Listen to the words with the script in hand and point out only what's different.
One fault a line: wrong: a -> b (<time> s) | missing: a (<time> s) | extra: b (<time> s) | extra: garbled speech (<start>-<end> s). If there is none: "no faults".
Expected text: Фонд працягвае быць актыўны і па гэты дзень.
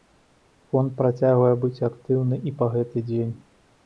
no faults